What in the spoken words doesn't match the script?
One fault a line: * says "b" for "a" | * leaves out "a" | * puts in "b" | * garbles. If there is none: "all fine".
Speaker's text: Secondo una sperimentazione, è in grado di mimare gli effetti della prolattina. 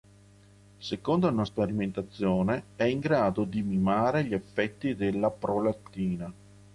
all fine